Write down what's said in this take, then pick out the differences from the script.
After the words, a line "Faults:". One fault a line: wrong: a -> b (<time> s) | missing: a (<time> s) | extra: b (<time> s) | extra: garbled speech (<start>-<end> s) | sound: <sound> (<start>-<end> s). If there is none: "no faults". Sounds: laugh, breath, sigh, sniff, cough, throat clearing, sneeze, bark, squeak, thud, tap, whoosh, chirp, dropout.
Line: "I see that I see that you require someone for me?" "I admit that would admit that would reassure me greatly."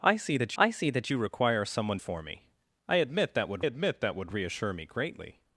"I see that I see that you require someone for me?" "I admit that would admit that would reassure me greatly."
Faults:
no faults